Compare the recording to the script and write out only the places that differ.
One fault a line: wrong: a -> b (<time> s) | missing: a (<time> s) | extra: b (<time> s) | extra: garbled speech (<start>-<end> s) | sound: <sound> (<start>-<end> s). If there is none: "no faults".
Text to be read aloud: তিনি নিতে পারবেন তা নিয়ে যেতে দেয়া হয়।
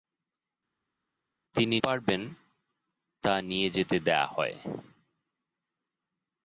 missing: নিতে (1.8 s)